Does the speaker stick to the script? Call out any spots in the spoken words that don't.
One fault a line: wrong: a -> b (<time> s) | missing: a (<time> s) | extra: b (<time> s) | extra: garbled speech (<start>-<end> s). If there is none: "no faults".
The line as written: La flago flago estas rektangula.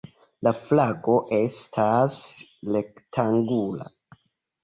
missing: flago (1.2 s)